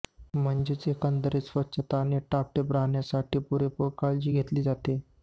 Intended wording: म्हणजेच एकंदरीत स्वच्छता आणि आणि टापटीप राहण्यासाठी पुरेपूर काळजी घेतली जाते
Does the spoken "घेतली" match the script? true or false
true